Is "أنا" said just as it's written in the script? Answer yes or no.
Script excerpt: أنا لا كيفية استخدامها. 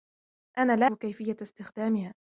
yes